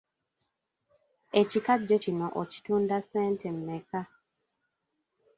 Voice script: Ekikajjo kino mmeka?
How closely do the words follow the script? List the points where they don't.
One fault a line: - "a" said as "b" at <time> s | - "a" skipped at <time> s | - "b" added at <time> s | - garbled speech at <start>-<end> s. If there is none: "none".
- "okitunda ssente" added at 2.4 s